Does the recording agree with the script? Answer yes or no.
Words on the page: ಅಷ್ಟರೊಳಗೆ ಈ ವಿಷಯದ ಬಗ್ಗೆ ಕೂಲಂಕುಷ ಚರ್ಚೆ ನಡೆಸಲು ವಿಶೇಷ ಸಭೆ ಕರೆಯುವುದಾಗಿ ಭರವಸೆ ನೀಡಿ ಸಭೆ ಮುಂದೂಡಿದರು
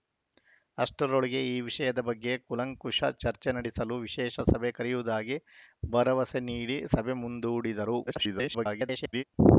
no